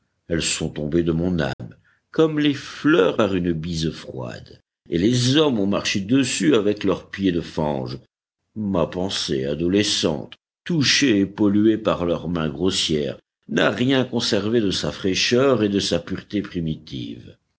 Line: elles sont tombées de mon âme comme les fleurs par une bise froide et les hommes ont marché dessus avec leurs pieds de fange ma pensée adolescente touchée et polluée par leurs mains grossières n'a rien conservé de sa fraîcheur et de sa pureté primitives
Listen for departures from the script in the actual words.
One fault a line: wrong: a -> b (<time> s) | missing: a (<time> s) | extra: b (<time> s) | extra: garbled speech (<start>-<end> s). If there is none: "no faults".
no faults